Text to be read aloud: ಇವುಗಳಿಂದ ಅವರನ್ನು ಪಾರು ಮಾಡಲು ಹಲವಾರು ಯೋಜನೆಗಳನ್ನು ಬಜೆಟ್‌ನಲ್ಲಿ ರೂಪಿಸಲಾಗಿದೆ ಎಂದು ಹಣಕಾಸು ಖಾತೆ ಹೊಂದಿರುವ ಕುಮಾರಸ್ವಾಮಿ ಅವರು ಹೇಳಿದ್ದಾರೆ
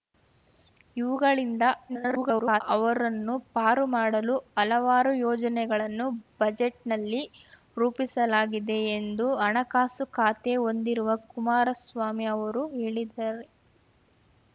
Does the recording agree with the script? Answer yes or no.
no